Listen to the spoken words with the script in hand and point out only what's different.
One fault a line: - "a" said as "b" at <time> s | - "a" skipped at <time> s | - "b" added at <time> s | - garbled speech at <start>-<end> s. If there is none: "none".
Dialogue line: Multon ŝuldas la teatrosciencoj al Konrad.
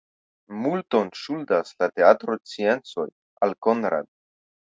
none